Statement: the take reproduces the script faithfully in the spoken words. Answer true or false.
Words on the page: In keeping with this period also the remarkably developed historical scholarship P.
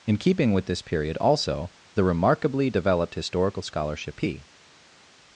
true